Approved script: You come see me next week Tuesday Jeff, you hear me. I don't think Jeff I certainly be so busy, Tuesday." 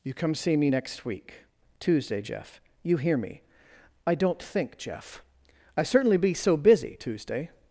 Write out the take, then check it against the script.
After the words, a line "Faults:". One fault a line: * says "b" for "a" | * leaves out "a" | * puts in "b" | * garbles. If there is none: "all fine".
You come see me next week Tuesday Jeff, you hear me. I don't think Jeff I certainly be so busy, Tuesday."
Faults:
all fine